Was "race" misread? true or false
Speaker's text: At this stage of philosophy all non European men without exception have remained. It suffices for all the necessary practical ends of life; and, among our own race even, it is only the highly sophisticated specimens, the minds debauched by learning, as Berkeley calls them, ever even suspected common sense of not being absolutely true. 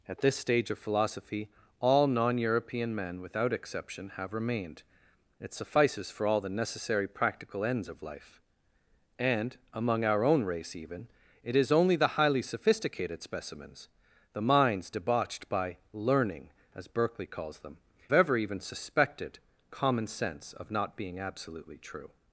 false